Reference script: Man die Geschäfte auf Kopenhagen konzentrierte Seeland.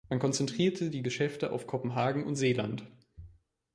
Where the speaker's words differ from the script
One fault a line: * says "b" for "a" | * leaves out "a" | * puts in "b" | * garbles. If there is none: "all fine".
* puts in "konzentrierte"
* says "und" for "konzentrierte"